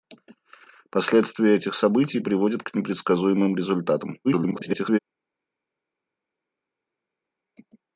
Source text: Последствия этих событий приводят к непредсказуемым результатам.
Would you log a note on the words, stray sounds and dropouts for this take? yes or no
yes